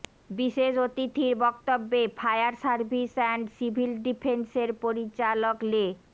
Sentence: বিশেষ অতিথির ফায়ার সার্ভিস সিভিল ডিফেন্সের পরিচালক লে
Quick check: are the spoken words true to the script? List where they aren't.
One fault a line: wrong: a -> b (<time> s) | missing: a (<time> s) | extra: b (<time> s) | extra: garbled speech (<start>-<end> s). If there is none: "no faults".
extra: বক্তব্যে (1.4 s)
extra: অ্যান্ড (3.2 s)